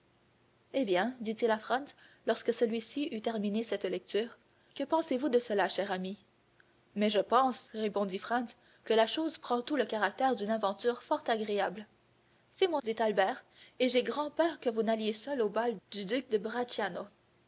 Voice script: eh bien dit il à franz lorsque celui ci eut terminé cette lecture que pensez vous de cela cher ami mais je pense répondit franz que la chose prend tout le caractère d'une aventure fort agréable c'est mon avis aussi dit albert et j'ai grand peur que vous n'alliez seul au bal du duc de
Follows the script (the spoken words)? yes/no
no